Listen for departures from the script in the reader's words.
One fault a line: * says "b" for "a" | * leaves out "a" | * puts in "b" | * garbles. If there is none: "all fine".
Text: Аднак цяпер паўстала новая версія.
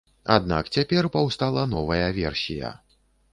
all fine